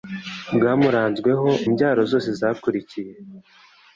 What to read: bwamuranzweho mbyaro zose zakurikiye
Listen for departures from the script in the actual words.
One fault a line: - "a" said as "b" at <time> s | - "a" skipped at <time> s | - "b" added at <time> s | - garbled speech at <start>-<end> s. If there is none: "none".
none